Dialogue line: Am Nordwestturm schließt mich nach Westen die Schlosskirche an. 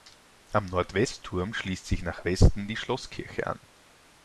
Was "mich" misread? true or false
true